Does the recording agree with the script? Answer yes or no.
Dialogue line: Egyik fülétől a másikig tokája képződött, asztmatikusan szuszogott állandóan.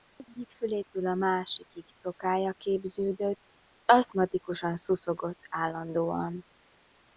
yes